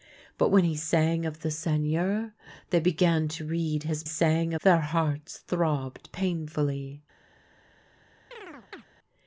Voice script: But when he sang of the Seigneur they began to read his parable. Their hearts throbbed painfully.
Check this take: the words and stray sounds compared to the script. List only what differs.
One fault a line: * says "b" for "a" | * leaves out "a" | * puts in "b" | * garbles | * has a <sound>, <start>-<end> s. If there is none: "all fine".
* says "sang" for "parable"
* has a chirp, 8.3-8.9 s